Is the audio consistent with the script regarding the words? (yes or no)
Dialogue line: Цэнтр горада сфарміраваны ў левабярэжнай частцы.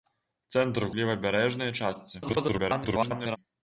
no